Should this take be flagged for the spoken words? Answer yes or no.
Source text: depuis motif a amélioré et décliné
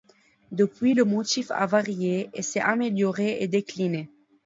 yes